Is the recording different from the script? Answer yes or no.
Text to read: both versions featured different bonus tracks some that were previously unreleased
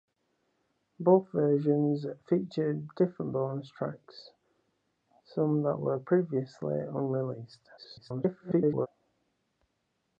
yes